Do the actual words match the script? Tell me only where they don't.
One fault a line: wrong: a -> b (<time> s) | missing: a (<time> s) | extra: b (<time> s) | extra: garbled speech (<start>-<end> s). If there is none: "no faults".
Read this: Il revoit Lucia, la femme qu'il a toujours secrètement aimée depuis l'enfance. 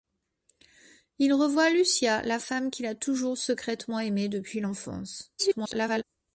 extra: garbled speech (5.4-6.0 s)